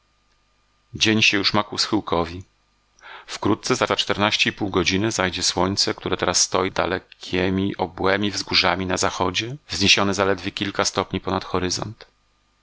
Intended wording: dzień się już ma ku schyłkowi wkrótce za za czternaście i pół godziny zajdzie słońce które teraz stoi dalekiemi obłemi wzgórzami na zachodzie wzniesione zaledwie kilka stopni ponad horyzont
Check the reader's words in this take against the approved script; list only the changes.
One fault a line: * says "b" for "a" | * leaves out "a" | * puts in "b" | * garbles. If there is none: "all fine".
all fine